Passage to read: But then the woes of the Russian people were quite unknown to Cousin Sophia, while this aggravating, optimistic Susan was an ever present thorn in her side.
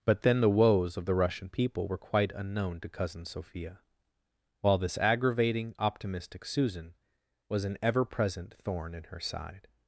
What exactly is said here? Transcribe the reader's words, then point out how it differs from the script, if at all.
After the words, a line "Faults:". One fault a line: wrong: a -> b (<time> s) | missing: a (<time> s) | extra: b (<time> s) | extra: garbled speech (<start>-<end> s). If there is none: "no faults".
But then the woes of the Russian people were quite unknown to Cousin Sophia, while this aggravating, optimistic Susan was an ever present thorn in her side.
Faults:
no faults